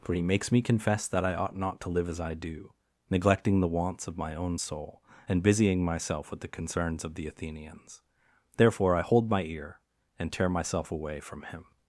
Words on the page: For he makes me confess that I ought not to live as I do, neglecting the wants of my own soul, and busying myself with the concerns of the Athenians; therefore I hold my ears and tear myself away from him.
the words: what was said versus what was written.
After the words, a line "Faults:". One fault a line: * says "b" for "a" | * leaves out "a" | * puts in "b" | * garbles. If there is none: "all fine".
For he makes me confess that I ought not to live as I do, neglecting the wants of my own soul, and busying myself with the concerns of the Athenians; therefore I hold my ear and tear myself away from him.
Faults:
* says "ear" for "ears"